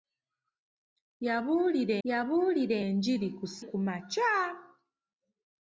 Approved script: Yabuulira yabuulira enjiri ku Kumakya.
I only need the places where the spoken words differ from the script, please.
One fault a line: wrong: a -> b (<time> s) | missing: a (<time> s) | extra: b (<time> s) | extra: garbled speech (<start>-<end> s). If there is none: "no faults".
no faults